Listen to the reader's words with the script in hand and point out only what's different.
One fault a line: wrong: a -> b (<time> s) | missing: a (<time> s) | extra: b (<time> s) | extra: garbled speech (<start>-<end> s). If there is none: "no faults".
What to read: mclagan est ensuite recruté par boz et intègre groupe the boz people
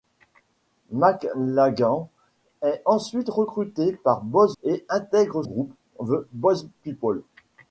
no faults